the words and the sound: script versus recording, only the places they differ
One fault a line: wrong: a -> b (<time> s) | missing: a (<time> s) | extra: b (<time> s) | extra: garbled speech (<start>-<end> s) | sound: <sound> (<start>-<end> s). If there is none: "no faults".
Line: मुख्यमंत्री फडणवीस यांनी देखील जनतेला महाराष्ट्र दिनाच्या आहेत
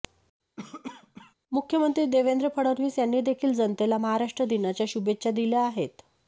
sound: cough (0.6-1.3 s)
extra: देवेंद्र (2.1 s)
extra: शुभेच्छा दिल्या (4.9 s)